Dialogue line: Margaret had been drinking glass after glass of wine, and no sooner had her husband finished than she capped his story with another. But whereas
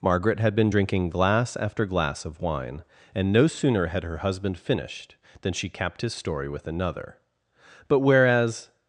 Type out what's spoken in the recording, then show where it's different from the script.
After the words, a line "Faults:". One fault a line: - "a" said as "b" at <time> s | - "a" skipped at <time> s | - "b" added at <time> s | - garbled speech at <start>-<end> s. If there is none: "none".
Margaret had been drinking glass after glass of wine, and no sooner had her husband finished than she capped his story with another. But whereas
Faults:
none